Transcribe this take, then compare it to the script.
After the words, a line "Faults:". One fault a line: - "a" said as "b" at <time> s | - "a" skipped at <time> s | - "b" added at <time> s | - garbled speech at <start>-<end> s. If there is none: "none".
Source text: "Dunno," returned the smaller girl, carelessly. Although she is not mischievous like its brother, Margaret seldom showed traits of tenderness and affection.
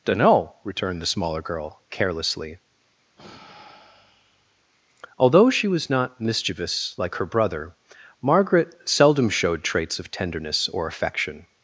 "Dunno," returned the smaller girl, carelessly. Although she was not mischievous like her brother, Margaret seldom showed traits of tenderness or affection.
Faults:
- "is" said as "was" at 5.7 s
- "its" said as "her" at 7.1 s
- "and" said as "or" at 10.7 s